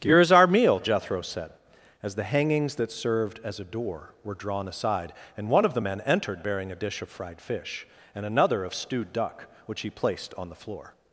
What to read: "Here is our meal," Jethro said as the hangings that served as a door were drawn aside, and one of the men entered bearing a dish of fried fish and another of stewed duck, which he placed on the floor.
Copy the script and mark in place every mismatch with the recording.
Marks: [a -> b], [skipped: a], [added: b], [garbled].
"Here is our meal," Jethro said as the hangings that served as a door were drawn aside, and one of the men entered bearing a dish of fried fish and another of stewed duck, which he placed on the floor.